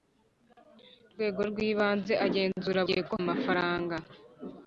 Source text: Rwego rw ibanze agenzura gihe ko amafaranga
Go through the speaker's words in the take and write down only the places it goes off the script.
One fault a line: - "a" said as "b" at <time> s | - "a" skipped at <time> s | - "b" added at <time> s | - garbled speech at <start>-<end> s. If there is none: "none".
none